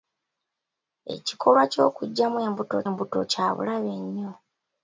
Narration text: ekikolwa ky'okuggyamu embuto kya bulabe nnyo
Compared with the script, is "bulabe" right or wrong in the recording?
right